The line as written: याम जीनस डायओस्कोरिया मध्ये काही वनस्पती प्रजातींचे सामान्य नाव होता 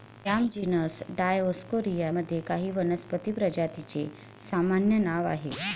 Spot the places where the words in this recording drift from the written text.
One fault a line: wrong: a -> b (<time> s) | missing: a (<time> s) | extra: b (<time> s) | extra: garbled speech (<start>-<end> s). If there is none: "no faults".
wrong: होता -> आहे (5.3 s)